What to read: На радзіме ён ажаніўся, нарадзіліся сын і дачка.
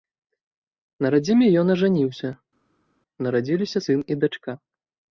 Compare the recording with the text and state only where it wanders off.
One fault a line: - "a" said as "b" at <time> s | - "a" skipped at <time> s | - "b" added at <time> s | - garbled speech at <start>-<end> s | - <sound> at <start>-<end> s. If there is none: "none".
none